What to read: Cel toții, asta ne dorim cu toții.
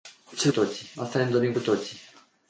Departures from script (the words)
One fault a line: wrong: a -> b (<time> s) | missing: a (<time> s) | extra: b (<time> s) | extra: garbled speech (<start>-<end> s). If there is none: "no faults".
no faults